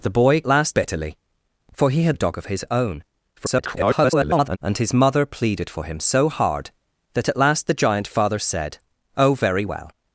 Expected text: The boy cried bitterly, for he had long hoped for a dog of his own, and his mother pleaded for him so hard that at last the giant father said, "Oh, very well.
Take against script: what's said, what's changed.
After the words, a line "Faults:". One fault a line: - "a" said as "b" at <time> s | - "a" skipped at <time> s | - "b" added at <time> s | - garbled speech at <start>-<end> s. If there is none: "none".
The boy last bitterly, for he had a dog of his own, [garbled] and his mother pleaded for him so hard that at last the giant father said, "Oh, very well.
Faults:
- "cried" said as "last" at 0.4 s
- "long hoped for" skipped at 2.2 s
- garbled speech at 3.4-4.6 s